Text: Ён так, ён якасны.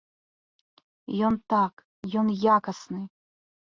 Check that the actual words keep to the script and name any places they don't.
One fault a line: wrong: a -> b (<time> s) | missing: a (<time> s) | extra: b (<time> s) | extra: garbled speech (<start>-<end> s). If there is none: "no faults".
no faults